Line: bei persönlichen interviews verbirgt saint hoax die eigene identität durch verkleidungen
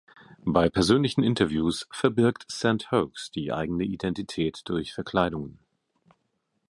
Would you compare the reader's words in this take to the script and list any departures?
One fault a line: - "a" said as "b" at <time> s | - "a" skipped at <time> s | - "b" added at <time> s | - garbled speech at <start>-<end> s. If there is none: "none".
none